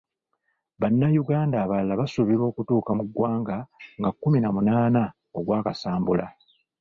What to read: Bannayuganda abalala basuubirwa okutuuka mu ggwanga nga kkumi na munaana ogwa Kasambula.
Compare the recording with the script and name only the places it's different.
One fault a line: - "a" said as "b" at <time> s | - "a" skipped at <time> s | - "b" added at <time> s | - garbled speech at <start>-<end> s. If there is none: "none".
none